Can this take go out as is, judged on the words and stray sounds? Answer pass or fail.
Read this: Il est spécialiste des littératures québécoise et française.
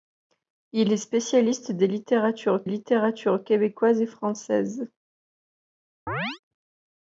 fail